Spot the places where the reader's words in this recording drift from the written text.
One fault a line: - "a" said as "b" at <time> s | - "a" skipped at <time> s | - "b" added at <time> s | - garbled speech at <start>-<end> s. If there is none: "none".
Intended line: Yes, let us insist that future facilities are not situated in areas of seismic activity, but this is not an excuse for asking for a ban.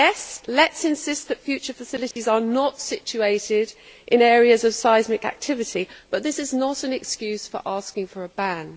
none